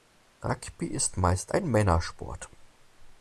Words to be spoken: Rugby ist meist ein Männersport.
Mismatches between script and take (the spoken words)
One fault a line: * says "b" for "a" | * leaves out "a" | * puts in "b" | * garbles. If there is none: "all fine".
all fine